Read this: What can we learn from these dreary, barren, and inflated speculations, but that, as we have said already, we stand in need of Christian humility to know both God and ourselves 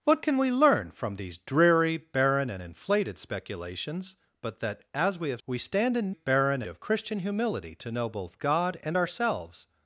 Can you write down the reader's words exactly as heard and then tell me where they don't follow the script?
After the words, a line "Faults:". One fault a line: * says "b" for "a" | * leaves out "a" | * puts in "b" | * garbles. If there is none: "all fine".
What can we learn from these dreary, barren, and inflated speculations, but that, as we have we stand in barren of Christian humility to know both God and ourselves
Faults:
* leaves out "said already"
* says "barren" for "need"